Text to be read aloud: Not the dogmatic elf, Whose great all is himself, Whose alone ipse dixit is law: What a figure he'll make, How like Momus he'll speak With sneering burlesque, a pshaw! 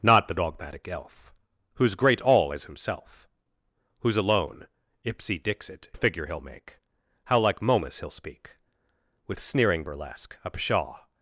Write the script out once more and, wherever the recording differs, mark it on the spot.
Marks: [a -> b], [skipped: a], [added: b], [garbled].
Not the dogmatic elf, Whose great all is himself, Whose alone ipse dixit [skipped: is law: What] a figure he'll make, How like Momus he'll speak With sneering burlesque, a pshaw!